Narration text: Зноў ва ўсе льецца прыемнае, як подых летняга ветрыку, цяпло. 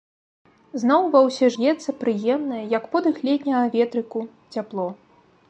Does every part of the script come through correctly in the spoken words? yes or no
yes